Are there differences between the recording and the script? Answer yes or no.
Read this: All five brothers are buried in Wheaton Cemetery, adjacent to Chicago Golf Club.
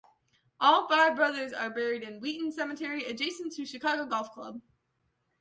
no